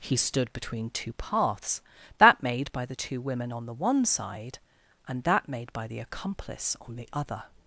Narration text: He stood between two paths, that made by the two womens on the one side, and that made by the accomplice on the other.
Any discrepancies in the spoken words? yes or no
yes